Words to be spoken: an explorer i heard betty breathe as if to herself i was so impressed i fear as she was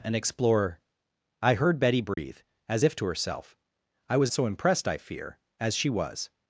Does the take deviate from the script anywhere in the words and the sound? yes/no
yes